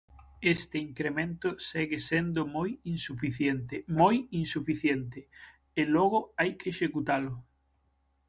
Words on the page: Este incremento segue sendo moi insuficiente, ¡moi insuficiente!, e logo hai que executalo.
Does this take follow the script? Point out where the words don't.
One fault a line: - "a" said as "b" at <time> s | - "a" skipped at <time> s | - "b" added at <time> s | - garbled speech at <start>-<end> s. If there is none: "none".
none